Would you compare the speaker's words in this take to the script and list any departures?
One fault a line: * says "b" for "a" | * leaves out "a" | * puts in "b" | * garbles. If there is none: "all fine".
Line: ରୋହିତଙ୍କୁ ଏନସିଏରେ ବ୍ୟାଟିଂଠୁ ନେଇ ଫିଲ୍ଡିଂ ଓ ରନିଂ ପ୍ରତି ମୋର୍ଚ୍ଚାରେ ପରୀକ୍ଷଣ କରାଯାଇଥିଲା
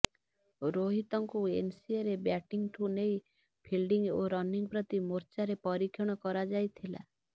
all fine